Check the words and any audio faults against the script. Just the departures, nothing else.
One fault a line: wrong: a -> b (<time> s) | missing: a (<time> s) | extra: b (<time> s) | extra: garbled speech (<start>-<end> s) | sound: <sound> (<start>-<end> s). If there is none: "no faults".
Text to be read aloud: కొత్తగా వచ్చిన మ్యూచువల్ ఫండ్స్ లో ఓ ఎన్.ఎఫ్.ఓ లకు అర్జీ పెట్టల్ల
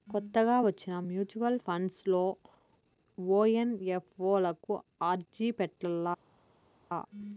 no faults